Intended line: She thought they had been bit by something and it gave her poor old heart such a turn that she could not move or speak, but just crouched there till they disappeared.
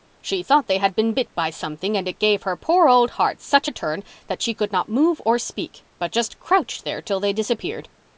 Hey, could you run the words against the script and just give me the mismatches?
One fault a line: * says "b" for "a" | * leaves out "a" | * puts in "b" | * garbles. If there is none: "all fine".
all fine